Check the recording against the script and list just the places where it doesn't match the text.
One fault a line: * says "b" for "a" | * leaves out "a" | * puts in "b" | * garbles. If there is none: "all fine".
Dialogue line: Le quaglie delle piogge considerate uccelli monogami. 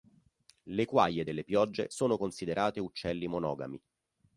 * puts in "sono"